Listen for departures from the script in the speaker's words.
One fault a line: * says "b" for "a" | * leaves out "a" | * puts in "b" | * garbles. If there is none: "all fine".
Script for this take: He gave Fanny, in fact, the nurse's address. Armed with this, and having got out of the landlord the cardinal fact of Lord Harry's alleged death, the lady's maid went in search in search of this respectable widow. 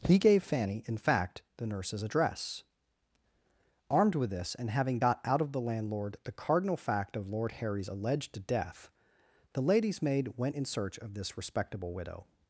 * leaves out "in search"